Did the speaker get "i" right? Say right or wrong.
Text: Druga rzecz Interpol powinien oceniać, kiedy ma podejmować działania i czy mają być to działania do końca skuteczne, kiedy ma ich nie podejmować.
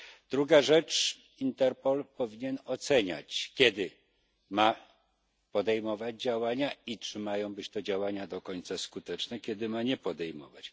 right